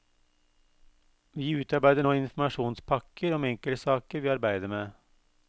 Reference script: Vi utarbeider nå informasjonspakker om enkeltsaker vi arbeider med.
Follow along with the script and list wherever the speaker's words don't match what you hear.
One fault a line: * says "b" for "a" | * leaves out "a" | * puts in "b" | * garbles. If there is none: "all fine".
all fine